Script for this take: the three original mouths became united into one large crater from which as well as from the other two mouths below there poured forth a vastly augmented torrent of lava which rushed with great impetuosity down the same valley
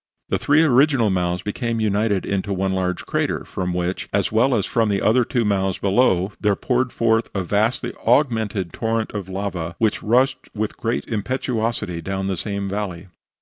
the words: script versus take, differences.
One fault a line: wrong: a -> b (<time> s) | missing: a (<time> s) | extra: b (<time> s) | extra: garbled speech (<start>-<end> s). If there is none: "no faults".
no faults